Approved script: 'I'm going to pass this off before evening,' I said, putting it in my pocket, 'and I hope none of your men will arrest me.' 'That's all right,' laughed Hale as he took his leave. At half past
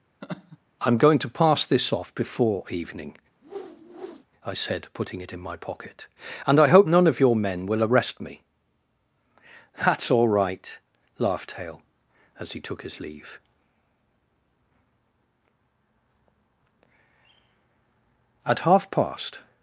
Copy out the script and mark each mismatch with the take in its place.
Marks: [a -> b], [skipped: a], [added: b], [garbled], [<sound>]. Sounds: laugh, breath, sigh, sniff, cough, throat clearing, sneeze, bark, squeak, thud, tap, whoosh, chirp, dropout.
[laugh] 'I'm going to pass this off before evening,' [whoosh] I said, putting it in my pocket, 'and I hope none of your men will arrest me.' 'That's all right,' laughed Hale as he took his leave. At half past